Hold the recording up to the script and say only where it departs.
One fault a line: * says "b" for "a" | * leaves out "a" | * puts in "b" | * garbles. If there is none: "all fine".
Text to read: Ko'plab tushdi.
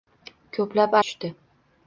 all fine